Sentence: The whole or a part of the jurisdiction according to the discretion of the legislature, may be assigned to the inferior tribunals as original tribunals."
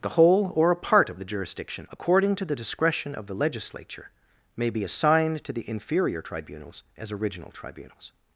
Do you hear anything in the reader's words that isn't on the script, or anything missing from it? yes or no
no